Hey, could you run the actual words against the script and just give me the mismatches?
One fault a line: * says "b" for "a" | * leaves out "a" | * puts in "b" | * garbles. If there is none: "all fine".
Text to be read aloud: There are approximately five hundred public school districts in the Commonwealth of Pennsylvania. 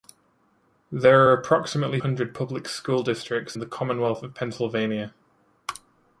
* leaves out "five"
* leaves out "in"